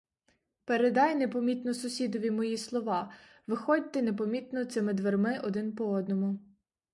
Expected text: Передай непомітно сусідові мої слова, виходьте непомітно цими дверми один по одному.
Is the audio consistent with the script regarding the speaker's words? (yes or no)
yes